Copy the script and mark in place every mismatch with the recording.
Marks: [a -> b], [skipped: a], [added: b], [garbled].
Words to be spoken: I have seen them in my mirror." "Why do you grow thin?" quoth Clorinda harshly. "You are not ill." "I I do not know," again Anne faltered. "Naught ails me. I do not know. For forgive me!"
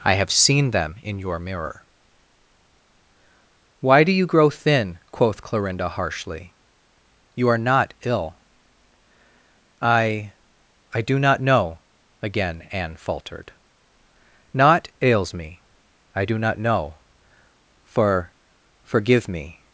I have seen them in [my -> your] mirror." "Why do you grow thin?" quoth Clorinda harshly. "You are not ill." "I I do not know," again Anne faltered. "Naught ails me. I do not know. For forgive me!"